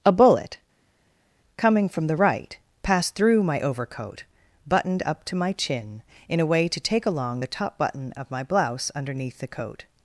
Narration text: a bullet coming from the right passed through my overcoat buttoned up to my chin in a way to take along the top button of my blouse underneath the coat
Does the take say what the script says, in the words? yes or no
yes